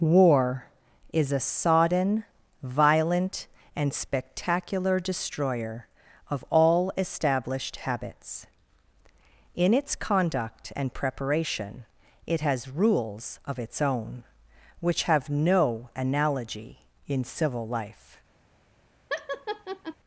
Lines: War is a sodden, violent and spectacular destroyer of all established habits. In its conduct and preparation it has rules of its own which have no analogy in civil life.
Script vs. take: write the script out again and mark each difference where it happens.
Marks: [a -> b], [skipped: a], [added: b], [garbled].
War is a sodden, violent and spectacular destroyer of all established habits. In its conduct and preparation it has rules of its own which have no analogy in civil life.